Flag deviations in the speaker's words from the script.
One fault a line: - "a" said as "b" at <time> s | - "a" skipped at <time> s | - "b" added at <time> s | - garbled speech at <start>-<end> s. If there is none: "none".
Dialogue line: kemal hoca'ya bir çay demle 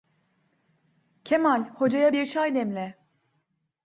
none